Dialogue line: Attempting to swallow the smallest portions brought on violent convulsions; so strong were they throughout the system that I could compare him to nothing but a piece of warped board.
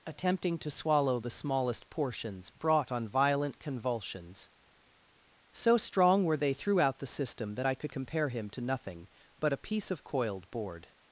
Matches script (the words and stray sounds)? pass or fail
fail